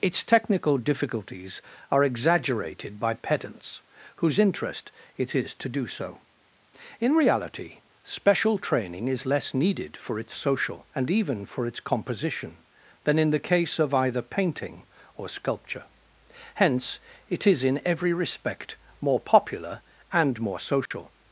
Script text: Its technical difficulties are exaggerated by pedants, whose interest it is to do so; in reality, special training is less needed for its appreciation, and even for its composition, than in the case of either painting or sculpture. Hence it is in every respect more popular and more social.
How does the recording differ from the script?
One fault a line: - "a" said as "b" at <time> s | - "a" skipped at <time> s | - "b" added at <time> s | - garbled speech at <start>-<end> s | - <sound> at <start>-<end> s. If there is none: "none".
- "appreciation" said as "social" at 10.3 s
- dropout at 20.9-20.9 s